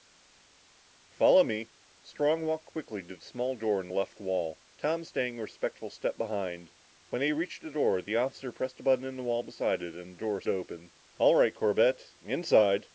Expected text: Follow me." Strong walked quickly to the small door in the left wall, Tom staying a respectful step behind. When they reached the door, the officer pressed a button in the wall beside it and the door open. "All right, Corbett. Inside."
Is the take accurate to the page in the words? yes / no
yes